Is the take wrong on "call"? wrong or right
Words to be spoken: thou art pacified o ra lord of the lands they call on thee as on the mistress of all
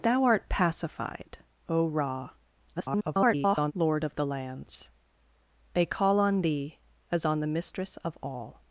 right